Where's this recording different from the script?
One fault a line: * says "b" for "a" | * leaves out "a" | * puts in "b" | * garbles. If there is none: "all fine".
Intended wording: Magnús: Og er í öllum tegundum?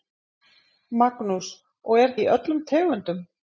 all fine